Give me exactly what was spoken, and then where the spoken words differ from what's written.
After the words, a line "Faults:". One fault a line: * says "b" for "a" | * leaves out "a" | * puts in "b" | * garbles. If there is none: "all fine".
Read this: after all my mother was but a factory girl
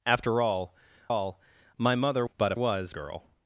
after all all my mother but a was girl
Faults:
* puts in "all"
* leaves out "was"
* says "was" for "factory"